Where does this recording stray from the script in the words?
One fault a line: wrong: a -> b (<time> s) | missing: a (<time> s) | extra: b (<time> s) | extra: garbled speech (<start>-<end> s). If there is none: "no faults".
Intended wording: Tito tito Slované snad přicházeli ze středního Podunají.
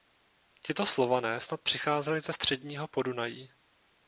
missing: tito (0.8 s)